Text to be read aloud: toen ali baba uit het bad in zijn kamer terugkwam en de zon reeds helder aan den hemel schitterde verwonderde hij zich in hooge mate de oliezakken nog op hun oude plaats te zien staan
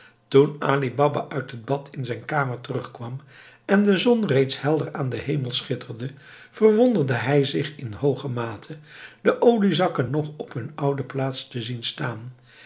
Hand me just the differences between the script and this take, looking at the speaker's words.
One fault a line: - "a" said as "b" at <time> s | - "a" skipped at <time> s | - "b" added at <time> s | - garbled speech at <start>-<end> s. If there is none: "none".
none